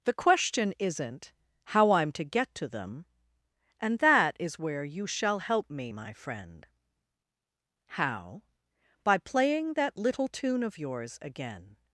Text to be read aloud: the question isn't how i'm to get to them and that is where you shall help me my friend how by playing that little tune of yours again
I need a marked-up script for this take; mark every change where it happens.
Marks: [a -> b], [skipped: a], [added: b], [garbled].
the question isn't how i'm to get to them and that is where you shall help me my friend how by playing that little tune of yours again